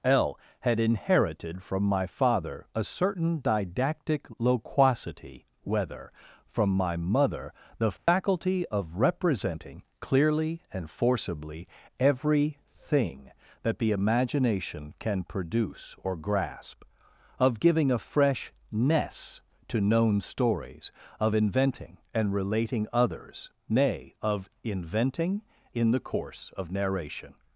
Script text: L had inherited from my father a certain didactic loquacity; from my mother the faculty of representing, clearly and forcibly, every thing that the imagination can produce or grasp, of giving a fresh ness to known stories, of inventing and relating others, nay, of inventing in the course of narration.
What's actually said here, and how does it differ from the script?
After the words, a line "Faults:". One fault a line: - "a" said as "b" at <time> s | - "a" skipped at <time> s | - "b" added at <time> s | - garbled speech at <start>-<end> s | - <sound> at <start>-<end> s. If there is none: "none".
L had inherited from my father a certain didactic loquacity; whether from my mother the faculty of representing, clearly and forcibly, every thing that the imagination can produce or grasp, of giving a fresh ness to known stories, of inventing and relating others, nay, of inventing in the course of narration.
Faults:
- "whether" added at 5.6 s
- dropout at 8.0-8.1 s